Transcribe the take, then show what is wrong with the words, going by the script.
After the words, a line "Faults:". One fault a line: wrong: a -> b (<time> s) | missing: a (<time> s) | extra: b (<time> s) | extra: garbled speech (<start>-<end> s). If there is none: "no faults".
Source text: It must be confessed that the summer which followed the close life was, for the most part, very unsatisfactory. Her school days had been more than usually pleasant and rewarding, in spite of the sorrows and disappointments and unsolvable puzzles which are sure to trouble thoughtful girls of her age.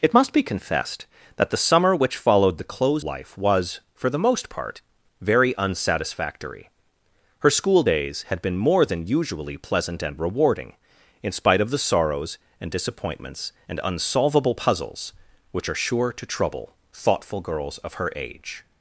It must be confessed that the summer which followed the close life was, for the most part, very unsatisfactory. Her school days had been more than usually pleasant and rewarding, in spite of the sorrows and disappointments and unsolvable puzzles which are sure to trouble thoughtful girls of her age.
Faults:
no faults